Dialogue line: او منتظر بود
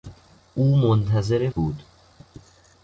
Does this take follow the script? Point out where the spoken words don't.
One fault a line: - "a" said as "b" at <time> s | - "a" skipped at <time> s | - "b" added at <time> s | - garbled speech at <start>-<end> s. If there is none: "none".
none